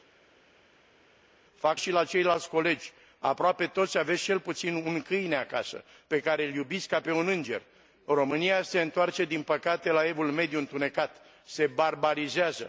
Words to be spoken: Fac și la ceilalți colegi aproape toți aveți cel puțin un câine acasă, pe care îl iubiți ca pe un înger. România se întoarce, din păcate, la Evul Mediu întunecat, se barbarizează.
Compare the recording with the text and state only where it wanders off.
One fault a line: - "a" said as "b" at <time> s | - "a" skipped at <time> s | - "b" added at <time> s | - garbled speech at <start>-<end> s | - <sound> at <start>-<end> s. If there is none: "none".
none